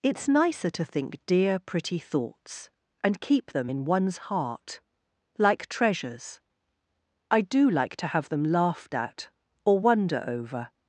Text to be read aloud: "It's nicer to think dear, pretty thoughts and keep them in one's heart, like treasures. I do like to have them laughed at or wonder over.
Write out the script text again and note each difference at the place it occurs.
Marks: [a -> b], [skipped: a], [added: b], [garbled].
"It's nicer to think dear, pretty thoughts and keep them in one's heart, like treasures. I do like to have them laughed at or wonder over.